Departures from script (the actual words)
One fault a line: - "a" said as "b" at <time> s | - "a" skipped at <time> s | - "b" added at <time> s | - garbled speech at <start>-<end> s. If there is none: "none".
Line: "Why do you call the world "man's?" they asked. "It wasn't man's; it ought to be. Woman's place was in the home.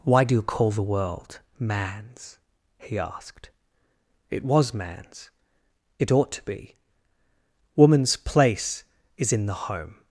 - "they" said as "he" at 2.8 s
- "wasn't" said as "was" at 4.4 s
- "was" said as "is" at 9.2 s